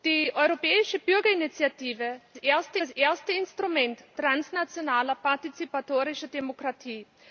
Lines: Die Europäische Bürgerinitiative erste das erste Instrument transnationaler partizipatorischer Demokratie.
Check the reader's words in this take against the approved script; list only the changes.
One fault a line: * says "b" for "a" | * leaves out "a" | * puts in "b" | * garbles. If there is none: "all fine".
all fine